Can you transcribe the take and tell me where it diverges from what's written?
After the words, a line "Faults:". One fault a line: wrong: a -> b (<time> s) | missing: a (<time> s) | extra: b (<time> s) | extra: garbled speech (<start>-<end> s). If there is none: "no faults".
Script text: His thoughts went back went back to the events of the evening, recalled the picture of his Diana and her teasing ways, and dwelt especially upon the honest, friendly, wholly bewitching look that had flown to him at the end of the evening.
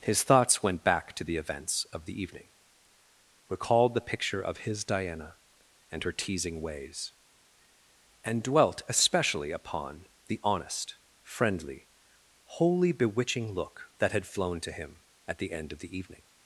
His thoughts went back to the events of the evening, recalled the picture of his Diana and her teasing ways, and dwelt especially upon the honest, friendly, wholly bewitching look that had flown to him at the end of the evening.
Faults:
missing: went back (1.1 s)